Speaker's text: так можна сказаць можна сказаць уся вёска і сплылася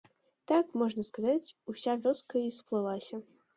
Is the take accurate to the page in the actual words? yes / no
no